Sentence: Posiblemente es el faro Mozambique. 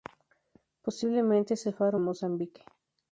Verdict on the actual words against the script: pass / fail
pass